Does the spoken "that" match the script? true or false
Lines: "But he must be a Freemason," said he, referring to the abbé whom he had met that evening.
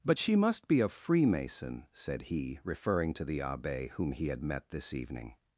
false